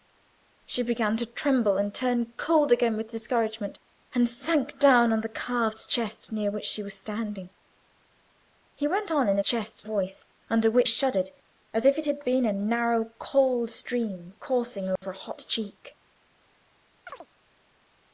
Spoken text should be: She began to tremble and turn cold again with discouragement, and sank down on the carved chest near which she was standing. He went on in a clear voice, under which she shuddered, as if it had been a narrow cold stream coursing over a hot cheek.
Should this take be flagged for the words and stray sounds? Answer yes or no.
yes